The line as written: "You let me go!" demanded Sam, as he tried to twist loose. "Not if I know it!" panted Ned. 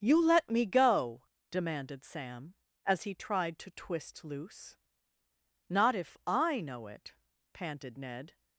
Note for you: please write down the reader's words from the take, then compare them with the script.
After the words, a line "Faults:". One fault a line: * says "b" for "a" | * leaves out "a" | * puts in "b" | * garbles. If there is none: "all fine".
"You let me go!" demanded Sam, as he tried to twist loose. "Not if I know it!" panted Ned.
Faults:
all fine